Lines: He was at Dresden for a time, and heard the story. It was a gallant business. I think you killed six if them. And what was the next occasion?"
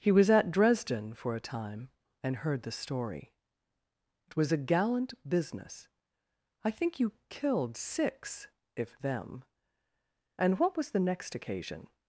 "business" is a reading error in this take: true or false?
false